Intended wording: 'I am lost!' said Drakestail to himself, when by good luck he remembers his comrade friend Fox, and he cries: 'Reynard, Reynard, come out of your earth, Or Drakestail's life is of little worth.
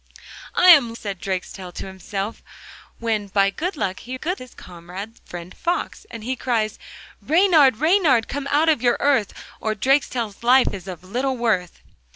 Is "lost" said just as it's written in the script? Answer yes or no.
no